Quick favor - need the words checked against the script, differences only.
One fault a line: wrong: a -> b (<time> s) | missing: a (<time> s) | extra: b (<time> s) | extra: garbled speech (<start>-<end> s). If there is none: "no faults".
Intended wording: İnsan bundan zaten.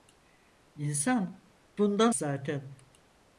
no faults